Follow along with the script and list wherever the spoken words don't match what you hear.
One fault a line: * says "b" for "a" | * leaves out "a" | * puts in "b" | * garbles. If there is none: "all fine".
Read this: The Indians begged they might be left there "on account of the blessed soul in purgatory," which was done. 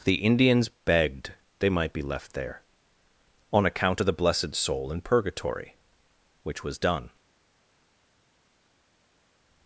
all fine